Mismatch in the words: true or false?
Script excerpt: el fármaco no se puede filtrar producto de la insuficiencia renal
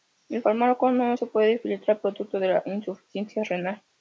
false